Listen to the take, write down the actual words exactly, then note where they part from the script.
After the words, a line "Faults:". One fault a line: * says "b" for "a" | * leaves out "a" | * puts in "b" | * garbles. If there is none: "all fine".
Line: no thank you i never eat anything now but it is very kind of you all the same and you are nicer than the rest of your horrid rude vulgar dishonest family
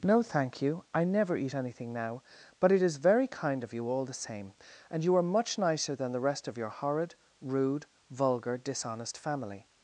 no thank you i never eat anything now but it is very kind of you all the same and you are much nicer than the rest of your horrid rude vulgar dishonest family
Faults:
* puts in "much"